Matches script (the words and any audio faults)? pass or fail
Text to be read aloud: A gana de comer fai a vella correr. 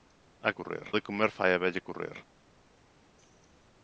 fail